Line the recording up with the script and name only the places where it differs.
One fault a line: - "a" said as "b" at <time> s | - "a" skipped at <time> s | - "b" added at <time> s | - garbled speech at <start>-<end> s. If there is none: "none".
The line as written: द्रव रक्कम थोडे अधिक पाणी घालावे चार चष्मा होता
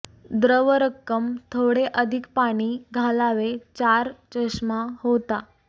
none